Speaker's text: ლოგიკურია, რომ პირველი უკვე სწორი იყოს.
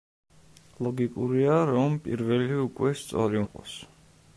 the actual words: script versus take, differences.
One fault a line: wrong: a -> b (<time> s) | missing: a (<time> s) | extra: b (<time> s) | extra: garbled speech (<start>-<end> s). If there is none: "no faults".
no faults